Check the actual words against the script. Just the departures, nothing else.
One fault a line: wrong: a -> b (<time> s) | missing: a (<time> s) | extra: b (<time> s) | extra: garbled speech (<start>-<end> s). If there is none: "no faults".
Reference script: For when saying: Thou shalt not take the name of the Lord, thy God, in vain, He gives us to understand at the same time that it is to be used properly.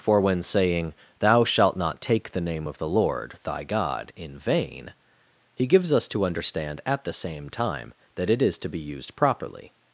no faults